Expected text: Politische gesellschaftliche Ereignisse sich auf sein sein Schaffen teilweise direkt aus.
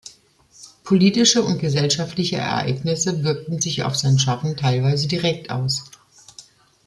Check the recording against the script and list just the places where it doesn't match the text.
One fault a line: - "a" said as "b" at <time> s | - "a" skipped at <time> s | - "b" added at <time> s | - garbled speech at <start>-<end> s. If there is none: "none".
- "und" added at 1.4 s
- "wirkten" added at 3.2 s
- "sein" skipped at 4.2 s